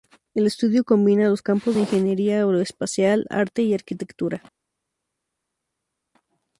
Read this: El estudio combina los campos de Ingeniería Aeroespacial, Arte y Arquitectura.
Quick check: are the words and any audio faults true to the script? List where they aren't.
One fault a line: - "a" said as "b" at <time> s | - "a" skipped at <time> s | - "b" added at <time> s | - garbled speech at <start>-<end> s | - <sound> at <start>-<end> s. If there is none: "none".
none